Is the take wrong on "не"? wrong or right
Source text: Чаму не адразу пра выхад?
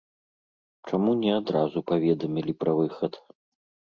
right